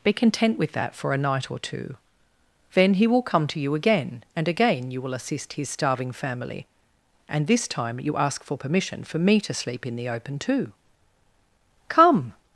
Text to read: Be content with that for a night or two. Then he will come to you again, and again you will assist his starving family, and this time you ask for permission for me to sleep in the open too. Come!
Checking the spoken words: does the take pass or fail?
pass